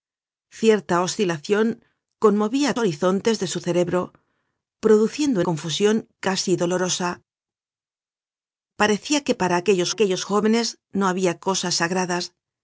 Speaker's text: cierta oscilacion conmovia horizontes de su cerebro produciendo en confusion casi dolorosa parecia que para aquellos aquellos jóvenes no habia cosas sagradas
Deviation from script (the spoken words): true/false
false